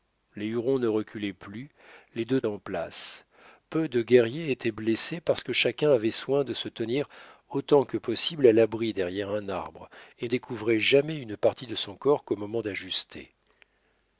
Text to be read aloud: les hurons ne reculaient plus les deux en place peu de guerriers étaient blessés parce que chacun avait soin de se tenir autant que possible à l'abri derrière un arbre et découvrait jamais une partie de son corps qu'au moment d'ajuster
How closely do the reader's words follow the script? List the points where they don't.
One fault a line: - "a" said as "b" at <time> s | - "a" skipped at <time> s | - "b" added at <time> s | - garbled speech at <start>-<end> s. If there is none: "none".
none